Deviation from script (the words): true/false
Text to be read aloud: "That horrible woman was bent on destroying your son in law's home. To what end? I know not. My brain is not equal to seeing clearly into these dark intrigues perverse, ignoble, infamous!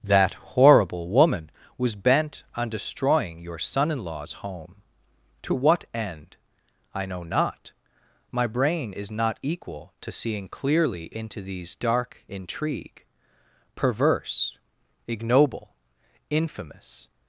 true